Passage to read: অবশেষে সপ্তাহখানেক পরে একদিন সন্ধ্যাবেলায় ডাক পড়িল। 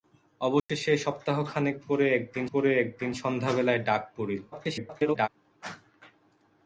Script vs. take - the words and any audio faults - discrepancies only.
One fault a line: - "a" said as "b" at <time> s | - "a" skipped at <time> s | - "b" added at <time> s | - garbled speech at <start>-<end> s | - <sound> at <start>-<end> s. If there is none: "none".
- dropout at 0.6-0.7 s
- "পরে একদিন" added at 2.5 s
- garbled speech at 4.5-5.3 s